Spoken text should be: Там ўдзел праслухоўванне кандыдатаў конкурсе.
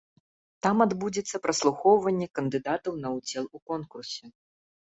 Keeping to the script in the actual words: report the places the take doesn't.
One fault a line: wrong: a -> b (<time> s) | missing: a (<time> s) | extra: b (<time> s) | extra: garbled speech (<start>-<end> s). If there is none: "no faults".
wrong: ўдзел -> адбудзецца (0.8 s)
extra: на ўдзел у (3.0 s)